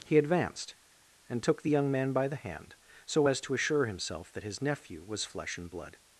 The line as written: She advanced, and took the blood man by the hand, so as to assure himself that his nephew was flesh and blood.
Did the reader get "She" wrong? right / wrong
wrong